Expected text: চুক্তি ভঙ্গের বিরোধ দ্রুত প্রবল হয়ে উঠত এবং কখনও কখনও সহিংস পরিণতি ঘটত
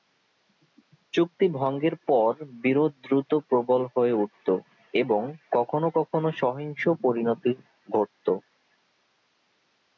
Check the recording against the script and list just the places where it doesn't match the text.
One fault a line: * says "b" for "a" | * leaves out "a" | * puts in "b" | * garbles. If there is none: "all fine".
* puts in "পর"